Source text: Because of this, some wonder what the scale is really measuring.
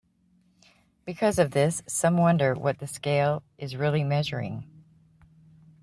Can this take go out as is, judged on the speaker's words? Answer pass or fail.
pass